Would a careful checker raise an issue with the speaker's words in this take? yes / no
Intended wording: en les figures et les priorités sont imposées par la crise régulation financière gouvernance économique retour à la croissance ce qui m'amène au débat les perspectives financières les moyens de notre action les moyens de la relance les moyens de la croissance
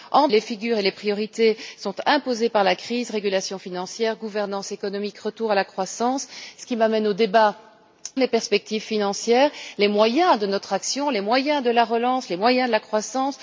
no